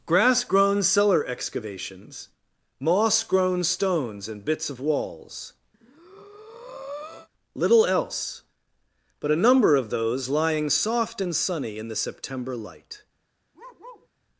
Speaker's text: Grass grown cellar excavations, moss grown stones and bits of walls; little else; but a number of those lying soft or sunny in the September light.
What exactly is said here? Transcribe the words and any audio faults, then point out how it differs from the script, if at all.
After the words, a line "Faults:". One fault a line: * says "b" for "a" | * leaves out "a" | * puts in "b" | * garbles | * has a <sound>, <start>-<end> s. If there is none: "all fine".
Grass grown cellar excavations, moss grown stones and bits of walls; little else; but a number of those lying soft and sunny in the September light.
Faults:
* has a breath, 5.7-7.3 s
* says "and" for "or"
* has a bark, 13.5-14.1 s